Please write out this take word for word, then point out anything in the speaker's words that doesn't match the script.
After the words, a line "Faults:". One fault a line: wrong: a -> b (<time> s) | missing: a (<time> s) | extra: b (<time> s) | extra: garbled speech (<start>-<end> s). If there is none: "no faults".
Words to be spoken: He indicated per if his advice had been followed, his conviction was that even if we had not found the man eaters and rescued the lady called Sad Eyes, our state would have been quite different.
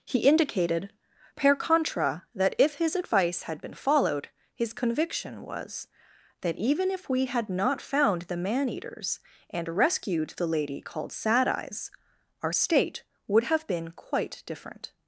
He indicated per contra, that if his advice had been followed, his conviction was that even if we had not found the man eaters and rescued the lady called Sad Eyes, our state would have been quite different.
Faults:
extra: contra that (1.5 s)